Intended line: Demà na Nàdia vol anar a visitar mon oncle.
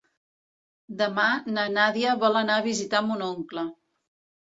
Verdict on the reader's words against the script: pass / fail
pass